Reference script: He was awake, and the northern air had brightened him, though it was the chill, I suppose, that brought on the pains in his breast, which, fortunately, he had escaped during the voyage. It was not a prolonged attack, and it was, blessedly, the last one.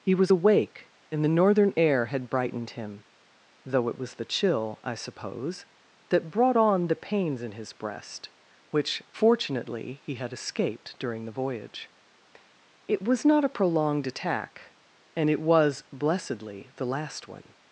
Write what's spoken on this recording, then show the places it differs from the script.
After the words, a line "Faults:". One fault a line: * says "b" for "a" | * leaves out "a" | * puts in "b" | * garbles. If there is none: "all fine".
He was awake, and the northern air had brightened him, though it was the chill, I suppose, that brought on the pains in his breast, which, fortunately, he had escaped during the voyage. It was not a prolonged attack, and it was, blessedly, the last one.
Faults:
all fine